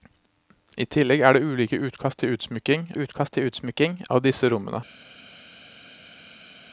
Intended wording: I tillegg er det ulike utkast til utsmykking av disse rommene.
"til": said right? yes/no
yes